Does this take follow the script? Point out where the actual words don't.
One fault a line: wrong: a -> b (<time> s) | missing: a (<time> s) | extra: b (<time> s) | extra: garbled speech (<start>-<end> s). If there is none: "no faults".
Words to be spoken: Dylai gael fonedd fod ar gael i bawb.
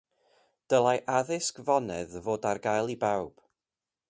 wrong: gael -> addysg (1.2 s)